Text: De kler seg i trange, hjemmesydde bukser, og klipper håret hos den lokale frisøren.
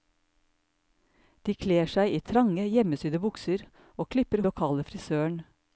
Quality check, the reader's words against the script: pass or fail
fail